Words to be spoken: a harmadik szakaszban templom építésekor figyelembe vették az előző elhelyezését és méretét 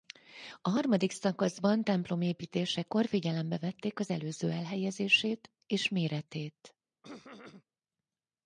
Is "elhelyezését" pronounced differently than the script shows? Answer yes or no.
no